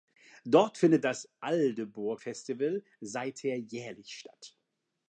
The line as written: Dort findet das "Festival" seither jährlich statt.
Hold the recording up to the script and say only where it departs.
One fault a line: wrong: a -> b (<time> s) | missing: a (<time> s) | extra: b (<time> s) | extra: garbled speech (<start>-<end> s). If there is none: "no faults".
extra: Aldeburgh (1.4 s)